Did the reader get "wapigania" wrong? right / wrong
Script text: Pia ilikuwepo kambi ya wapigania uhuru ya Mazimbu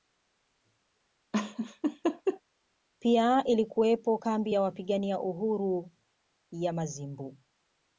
right